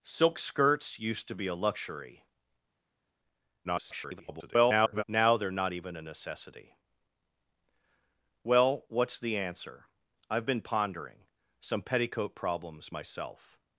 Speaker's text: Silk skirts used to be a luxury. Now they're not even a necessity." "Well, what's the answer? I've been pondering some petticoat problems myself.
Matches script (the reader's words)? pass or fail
fail